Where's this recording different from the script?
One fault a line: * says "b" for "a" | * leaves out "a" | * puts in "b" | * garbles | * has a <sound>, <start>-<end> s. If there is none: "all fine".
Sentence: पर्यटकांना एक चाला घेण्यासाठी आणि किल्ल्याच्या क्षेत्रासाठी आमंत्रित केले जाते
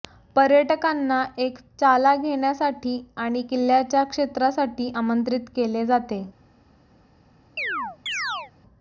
* has a chirp, 7.6-8.5 s